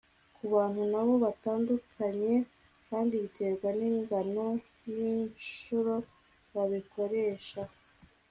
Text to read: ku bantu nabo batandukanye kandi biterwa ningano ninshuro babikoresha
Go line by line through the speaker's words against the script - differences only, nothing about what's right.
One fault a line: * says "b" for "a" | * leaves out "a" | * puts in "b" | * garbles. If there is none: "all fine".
all fine